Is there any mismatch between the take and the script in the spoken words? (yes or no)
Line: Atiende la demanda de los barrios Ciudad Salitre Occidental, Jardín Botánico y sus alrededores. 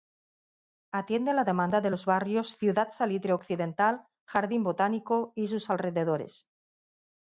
no